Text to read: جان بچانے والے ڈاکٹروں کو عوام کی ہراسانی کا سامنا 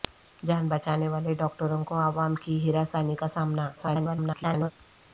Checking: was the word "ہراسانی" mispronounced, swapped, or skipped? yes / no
no